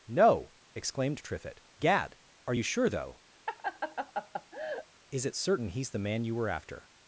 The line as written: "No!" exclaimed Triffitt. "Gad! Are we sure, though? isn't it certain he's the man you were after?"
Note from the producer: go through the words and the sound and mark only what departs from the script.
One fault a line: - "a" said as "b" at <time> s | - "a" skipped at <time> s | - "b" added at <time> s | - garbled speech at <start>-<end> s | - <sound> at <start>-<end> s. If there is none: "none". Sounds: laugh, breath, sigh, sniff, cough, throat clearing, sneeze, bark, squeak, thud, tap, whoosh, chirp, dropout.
- "we" said as "you" at 2.5 s
- laugh at 3.5-4.9 s
- "isn't" said as "is" at 5.1 s